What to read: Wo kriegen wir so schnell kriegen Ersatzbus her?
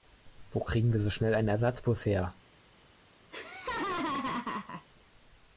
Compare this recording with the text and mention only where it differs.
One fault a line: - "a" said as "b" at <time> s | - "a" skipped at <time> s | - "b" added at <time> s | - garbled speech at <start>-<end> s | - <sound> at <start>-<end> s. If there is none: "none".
- "kriegen" said as "einen" at 1.3 s
- laugh at 3.3-4.9 s